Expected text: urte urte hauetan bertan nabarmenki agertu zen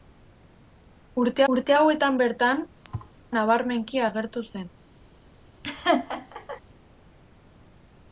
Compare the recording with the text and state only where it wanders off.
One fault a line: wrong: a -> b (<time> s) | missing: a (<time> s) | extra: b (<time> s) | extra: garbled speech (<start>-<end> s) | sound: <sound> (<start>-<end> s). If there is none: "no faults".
sound: thud (2.8-3.1 s)
sound: laugh (5.6-6.6 s)